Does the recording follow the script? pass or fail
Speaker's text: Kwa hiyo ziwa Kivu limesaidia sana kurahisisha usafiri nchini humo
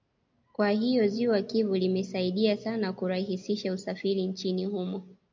pass